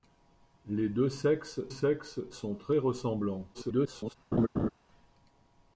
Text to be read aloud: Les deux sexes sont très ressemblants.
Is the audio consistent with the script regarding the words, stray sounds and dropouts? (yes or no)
no